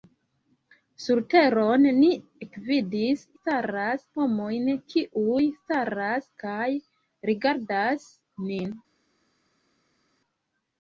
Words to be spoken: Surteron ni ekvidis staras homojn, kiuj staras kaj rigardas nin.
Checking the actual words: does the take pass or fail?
pass